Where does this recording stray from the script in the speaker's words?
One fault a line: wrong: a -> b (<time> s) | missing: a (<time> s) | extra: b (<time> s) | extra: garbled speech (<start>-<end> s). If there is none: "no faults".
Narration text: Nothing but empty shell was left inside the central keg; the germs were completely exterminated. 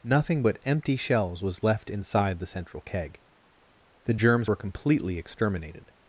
wrong: shell -> shells (0.9 s)